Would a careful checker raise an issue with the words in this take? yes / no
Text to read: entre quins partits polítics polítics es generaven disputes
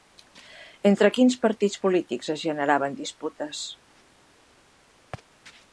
yes